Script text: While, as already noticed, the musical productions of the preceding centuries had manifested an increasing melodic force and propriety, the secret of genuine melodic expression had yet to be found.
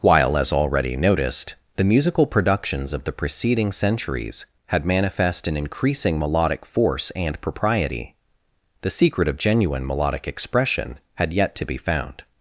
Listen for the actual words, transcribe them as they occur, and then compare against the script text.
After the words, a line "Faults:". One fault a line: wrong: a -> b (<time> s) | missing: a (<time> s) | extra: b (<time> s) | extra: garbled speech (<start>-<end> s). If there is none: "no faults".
While, as already noticed, the musical productions of the preceding centuries had manifest an increasing melodic force and propriety, the secret of genuine melodic expression had yet to be found.
Faults:
wrong: manifested -> manifest (4.8 s)